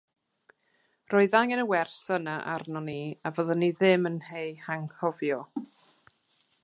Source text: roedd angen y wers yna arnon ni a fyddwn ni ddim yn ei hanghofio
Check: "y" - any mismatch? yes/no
no